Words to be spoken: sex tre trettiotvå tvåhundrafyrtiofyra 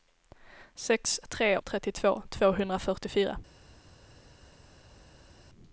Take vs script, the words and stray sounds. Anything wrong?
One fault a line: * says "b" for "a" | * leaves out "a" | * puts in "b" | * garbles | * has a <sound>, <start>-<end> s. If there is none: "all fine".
all fine